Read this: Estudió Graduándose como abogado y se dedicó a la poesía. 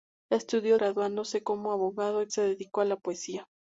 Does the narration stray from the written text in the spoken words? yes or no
no